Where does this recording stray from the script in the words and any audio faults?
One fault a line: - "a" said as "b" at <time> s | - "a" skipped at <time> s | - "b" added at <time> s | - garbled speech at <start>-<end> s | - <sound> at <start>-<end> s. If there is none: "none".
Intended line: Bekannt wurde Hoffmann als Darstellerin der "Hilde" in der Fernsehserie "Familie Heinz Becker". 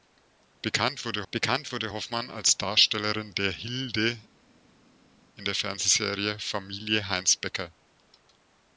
- "bekannt wurde" added at 1.3 s